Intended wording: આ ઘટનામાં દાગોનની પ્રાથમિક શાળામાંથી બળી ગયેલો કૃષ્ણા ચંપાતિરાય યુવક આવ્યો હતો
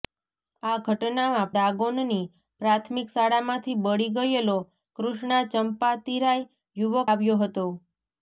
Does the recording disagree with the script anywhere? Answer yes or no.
no